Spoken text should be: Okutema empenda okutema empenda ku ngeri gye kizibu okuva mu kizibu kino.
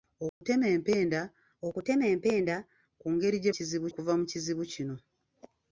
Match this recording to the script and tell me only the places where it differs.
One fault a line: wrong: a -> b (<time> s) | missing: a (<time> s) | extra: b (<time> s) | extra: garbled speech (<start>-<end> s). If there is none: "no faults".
no faults